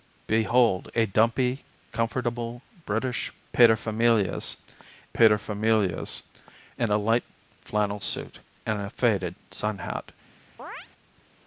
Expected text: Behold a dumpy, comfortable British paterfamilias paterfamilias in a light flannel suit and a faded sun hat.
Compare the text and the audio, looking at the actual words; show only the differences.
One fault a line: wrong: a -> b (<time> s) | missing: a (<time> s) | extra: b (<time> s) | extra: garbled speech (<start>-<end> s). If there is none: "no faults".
no faults